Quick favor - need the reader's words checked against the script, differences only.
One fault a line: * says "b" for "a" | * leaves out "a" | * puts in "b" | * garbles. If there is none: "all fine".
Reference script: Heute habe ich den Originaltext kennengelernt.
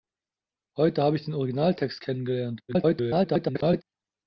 * garbles